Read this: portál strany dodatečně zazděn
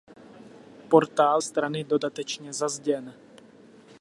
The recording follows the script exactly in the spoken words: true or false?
true